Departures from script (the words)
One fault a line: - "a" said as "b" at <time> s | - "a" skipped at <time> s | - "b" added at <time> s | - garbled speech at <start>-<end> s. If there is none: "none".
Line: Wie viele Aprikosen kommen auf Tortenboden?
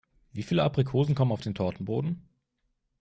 - "den" added at 1.4 s